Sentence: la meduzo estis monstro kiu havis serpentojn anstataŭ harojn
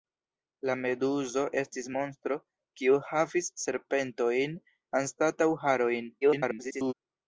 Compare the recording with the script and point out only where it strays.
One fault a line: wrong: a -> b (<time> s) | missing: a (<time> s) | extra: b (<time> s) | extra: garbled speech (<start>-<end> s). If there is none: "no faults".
extra: garbled speech (6.2-6.9 s)